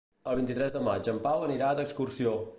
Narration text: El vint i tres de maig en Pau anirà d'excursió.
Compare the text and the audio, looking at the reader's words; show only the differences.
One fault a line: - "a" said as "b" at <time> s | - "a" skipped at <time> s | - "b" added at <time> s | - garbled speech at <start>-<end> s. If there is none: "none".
none